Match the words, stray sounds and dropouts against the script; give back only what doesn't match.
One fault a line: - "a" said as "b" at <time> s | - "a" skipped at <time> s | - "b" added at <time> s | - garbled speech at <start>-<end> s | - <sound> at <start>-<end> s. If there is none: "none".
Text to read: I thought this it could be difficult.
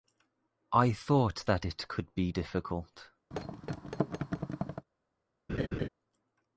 - "this" said as "that" at 1.4 s
- thud at 3.3-4.9 s
- laugh at 5.5-5.9 s